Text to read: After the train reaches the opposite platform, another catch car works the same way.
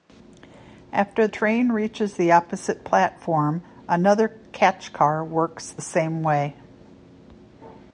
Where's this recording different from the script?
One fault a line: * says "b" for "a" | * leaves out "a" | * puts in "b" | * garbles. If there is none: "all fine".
* leaves out "the"